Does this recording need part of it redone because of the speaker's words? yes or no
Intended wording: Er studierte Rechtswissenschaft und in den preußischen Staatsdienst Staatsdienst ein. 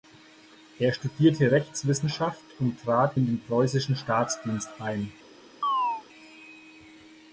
yes